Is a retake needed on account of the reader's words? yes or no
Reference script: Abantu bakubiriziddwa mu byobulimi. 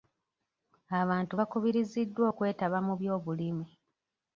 yes